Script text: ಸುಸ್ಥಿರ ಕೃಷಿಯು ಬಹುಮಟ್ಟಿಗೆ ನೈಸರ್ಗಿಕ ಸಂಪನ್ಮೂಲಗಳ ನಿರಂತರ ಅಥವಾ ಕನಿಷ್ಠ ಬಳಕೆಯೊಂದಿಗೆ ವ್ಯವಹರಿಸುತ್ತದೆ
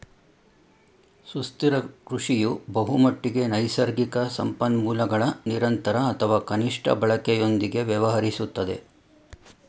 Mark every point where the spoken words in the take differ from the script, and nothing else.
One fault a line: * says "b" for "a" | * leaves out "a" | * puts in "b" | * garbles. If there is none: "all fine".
all fine